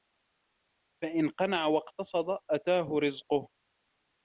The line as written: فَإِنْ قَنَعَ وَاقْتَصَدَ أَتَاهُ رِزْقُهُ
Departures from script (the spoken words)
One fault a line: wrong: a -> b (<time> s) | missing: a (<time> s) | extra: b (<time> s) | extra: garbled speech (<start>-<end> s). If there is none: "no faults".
no faults